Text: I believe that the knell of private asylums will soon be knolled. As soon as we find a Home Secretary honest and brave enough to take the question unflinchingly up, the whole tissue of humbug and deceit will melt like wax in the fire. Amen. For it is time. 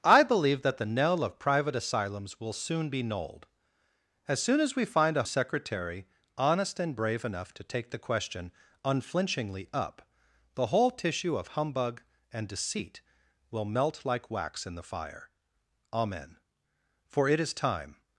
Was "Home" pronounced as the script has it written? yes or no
no